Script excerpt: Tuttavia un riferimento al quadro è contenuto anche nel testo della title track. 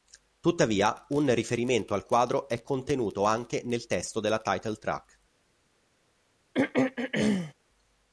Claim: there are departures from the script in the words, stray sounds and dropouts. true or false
true